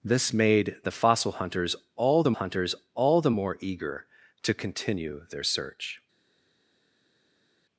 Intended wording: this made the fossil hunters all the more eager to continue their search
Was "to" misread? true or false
false